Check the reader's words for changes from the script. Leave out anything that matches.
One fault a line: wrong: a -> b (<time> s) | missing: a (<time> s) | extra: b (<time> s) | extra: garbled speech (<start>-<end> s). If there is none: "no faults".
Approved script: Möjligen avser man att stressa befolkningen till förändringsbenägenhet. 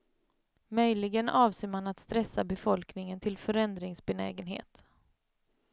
no faults